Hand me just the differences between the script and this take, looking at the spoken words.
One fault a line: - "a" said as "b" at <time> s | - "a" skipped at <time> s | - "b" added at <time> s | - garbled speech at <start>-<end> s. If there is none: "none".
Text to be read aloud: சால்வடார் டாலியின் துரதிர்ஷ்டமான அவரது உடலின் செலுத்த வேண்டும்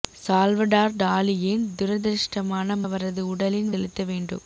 none